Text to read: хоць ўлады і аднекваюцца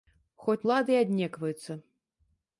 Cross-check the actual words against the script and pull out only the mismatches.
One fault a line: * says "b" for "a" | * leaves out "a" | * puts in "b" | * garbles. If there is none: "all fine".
all fine